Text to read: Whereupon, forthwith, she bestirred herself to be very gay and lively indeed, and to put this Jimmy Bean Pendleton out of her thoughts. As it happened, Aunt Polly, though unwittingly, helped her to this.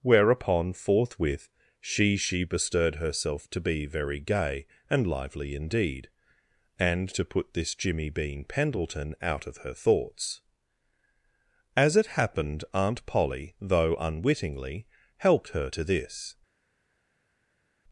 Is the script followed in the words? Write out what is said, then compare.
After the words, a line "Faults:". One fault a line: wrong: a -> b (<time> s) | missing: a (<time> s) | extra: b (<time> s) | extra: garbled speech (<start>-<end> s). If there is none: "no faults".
Whereupon, forthwith, she she bestirred herself to be very gay and lively indeed, and to put this Jimmy Bean Pendleton out of her thoughts. As it happened, Aunt Polly, though unwittingly, helped her to this.
Faults:
extra: she (2.2 s)